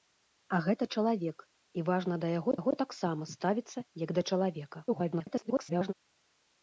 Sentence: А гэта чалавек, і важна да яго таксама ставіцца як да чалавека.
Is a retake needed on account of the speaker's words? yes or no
yes